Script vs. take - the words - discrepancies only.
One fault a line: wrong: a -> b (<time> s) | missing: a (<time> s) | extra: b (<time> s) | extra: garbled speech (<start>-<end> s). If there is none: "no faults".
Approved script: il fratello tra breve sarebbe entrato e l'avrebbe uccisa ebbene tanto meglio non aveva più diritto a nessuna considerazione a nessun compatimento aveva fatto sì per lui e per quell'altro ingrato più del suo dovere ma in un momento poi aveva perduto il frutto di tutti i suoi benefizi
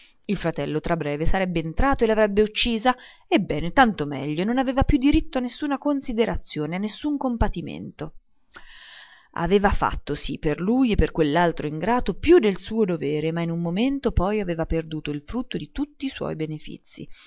no faults